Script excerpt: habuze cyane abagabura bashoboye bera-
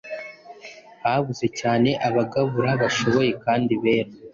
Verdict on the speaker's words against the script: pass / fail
fail